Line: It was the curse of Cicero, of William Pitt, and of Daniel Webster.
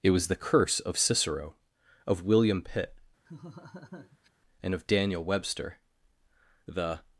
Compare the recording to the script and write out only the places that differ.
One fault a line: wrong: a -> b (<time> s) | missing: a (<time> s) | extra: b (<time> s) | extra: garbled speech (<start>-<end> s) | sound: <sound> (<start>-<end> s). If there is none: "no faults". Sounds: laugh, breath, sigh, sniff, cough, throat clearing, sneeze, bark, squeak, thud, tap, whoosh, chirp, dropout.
sound: laugh (3.3-4.3 s)
extra: The (6.7 s)